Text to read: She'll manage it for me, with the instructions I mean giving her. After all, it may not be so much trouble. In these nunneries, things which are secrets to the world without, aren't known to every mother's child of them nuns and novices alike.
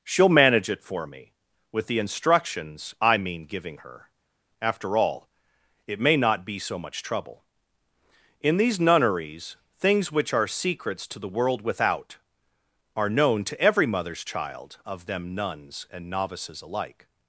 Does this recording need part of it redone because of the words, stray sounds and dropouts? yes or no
yes